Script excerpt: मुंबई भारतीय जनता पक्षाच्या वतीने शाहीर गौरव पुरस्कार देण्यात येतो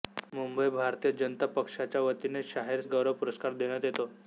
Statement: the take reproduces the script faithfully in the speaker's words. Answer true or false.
true